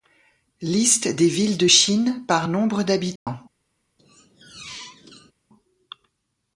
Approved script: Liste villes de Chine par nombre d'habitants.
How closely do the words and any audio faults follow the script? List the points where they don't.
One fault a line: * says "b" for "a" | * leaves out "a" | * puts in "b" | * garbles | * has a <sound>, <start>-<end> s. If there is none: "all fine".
* puts in "des"
* has a dropout, 3.2-3.3 s
* has a squeak, 4.0-5.3 s